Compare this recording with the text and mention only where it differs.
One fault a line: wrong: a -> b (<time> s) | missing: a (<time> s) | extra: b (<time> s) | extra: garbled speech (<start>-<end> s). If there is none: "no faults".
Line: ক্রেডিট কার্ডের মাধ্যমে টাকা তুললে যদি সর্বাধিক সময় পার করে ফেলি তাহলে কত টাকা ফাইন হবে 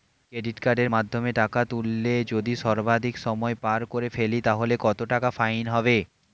no faults